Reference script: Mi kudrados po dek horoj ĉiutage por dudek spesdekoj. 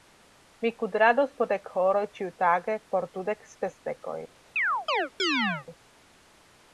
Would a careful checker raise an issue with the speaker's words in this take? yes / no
no